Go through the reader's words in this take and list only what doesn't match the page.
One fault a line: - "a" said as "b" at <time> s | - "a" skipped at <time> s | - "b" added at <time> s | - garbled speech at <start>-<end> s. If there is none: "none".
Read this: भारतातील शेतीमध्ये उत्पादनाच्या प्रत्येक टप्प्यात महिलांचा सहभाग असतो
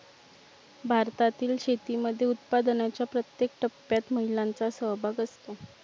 none